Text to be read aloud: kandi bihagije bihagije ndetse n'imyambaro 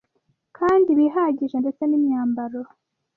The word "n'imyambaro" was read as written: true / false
true